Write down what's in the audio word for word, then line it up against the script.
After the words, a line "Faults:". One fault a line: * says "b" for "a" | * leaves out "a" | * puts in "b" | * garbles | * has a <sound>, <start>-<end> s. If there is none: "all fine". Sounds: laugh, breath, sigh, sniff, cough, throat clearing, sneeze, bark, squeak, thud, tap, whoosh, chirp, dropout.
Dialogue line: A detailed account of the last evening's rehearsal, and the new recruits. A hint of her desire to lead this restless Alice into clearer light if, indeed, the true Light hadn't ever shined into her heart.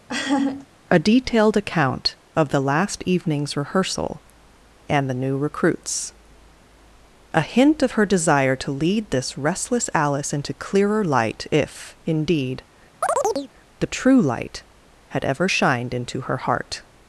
A detailed account of the last evening's rehearsal, and the new recruits. A hint of her desire to lead this restless Alice into clearer light if, indeed, the true Light had ever shined into her heart.
Faults:
* has a laugh, 0.1-0.7 s
* has a chirp, 13.0-13.5 s
* says "had" for "hadn't"